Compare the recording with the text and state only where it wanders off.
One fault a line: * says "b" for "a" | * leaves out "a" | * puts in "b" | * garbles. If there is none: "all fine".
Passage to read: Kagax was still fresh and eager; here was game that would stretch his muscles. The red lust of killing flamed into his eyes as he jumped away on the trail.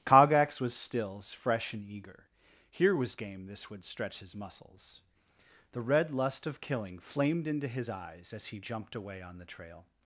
* says "stills" for "still"
* says "this" for "that"